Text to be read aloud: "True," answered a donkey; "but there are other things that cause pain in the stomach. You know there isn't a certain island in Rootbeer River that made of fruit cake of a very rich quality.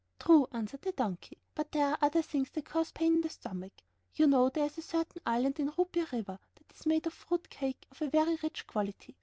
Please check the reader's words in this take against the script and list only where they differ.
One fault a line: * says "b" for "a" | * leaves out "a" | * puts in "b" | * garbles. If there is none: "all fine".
* says "the" for "a"
* says "is" for "isn't"
* puts in "is"